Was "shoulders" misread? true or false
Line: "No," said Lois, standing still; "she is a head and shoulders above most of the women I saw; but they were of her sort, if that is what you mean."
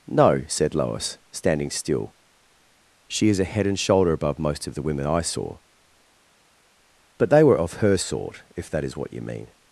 true